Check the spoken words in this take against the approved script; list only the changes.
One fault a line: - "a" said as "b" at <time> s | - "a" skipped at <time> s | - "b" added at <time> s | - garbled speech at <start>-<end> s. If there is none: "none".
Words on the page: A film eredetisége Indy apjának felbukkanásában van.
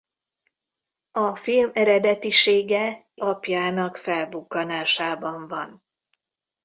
- "Indy" skipped at 3.1 s